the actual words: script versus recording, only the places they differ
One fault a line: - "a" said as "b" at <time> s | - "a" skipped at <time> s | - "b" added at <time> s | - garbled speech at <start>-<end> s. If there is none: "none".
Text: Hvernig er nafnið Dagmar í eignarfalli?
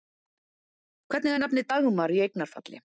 none